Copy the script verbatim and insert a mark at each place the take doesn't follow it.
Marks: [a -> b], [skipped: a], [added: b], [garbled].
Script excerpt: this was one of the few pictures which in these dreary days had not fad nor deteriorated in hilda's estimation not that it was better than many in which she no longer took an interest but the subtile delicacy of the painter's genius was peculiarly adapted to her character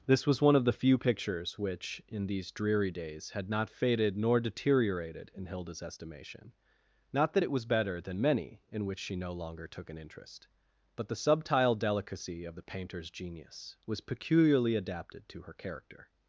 this was one of the few pictures which in these dreary days had not [fad -> faded] nor deteriorated in hilda's estimation not that it was better than many in which she no longer took an interest but the subtile delicacy of the painter's genius was peculiarly adapted to her character